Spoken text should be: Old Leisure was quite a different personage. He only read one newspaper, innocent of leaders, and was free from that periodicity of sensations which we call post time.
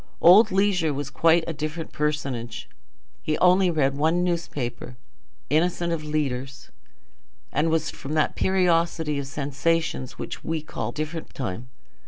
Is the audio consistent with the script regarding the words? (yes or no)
no